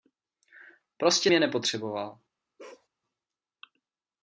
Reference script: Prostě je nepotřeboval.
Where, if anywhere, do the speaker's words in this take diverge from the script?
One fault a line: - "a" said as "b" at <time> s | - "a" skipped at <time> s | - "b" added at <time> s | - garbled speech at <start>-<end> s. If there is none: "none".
none